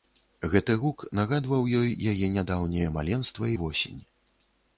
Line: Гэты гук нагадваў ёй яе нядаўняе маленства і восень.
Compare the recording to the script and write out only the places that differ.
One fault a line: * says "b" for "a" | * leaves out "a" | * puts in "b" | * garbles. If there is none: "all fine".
all fine